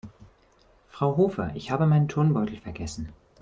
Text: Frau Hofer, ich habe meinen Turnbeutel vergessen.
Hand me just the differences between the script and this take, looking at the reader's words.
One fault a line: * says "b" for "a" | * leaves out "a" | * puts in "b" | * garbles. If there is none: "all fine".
all fine